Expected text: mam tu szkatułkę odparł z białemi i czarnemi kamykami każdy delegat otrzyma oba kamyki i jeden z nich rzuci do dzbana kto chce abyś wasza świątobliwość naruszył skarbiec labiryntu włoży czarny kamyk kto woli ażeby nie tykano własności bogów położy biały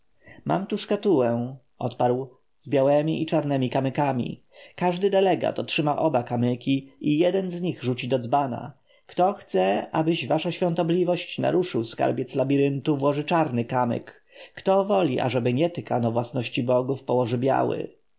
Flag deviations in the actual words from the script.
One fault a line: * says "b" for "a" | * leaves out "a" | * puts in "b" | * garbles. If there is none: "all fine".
all fine